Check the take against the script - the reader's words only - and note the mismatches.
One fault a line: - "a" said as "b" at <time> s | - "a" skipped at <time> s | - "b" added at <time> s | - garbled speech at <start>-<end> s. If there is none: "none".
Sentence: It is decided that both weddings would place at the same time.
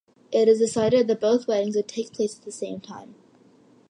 - "take" added at 1.9 s